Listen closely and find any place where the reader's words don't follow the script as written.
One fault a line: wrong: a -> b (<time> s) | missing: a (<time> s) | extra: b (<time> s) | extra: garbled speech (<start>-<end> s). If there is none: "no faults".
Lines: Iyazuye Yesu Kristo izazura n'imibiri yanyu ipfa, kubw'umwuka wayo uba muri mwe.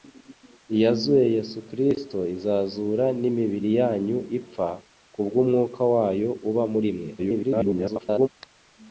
extra: garbled speech (7.2-8.3 s)